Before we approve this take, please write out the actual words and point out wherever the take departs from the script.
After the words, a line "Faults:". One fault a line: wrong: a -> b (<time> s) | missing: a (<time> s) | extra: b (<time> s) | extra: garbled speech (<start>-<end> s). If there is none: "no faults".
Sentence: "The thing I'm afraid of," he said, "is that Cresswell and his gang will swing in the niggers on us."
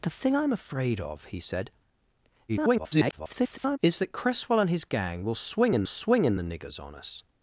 "The thing I'm afraid of," he said, [garbled] "is that Cresswell and his gang will swing in swing in the niggers on us."
Faults:
extra: garbled speech (2.5-3.8 s)
extra: swing in (5.9 s)